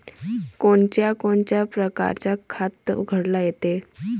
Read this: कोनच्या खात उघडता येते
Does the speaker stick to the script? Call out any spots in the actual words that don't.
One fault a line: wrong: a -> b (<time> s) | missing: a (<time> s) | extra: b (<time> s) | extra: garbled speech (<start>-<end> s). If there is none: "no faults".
extra: कोनच्या परकारं (1.1 s)